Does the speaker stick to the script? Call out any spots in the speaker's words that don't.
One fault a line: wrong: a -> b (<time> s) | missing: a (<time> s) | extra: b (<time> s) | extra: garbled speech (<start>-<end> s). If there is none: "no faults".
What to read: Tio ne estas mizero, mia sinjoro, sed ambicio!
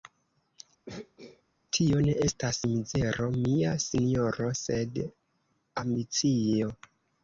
no faults